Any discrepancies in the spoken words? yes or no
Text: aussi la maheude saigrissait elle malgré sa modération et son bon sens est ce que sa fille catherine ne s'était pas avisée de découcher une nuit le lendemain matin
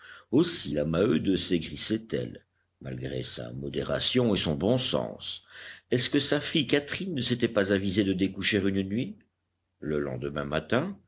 no